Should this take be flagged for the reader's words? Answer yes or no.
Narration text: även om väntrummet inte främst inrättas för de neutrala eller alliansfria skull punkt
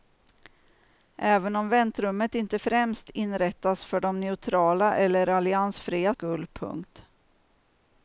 no